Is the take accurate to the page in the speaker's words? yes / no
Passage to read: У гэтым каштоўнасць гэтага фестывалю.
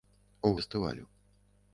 no